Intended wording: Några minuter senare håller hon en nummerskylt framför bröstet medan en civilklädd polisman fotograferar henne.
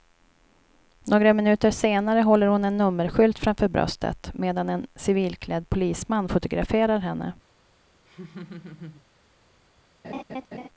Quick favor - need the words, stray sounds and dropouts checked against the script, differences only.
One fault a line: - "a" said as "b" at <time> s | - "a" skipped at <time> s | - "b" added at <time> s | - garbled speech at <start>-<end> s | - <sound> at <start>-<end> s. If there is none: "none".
- laugh at 8.1-9.0 s
- laugh at 10.0-10.7 s